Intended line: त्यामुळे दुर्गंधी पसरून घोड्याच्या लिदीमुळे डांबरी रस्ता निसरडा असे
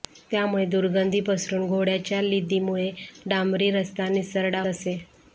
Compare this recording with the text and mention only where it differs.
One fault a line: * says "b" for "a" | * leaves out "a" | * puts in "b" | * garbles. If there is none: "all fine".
all fine